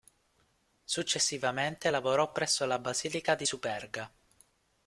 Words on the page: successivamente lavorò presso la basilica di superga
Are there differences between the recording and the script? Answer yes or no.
no